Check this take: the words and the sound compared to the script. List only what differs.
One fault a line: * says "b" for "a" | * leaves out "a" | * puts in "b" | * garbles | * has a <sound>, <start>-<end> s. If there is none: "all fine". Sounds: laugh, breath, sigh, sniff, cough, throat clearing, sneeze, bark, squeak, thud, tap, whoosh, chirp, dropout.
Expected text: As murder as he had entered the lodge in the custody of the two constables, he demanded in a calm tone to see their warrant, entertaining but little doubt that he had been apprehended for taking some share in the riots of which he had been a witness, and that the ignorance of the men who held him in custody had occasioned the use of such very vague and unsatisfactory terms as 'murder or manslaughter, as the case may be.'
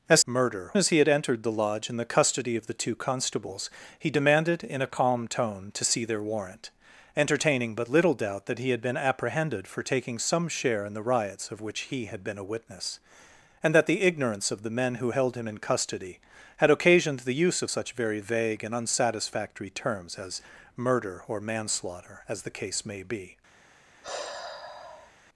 * has a sigh, 24.0-25.1 s